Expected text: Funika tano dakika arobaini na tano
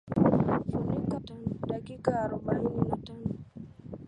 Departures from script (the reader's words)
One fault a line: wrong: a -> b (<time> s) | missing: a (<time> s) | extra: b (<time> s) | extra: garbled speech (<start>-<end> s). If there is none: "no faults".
no faults